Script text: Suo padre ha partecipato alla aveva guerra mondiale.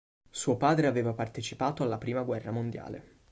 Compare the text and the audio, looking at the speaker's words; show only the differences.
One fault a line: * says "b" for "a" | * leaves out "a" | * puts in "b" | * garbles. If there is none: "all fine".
* says "aveva" for "ha"
* says "prima" for "aveva"